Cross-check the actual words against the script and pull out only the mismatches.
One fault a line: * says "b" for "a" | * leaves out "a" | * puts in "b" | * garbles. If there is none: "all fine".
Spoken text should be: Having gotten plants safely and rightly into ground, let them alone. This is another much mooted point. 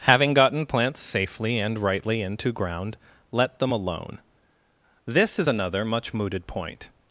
all fine